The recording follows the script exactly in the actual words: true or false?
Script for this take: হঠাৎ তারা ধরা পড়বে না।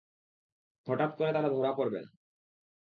false